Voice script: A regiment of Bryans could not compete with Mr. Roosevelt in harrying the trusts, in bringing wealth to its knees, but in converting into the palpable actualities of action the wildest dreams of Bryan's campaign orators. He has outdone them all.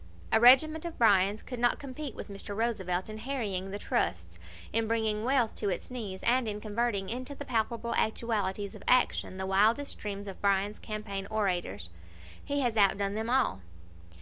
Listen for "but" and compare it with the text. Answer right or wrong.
wrong